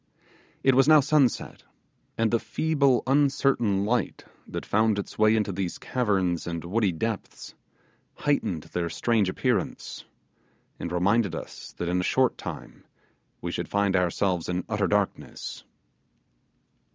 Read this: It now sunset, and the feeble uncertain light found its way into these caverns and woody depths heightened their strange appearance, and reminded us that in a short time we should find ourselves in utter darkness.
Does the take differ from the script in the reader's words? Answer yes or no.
yes